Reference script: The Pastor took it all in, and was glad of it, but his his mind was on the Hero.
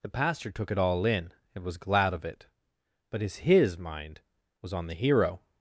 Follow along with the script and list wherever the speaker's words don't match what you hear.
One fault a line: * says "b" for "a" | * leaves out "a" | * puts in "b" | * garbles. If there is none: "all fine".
all fine